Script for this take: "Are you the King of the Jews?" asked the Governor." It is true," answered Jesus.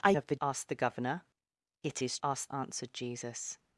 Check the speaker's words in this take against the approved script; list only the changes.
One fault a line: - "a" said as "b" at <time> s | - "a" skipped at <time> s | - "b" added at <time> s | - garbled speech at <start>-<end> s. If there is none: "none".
- "you the King" skipped at 0.1 s
- "Jews" skipped at 0.4 s
- "true" said as "asked" at 2.2 s